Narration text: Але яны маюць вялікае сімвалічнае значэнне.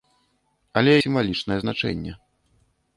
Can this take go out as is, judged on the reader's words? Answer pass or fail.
fail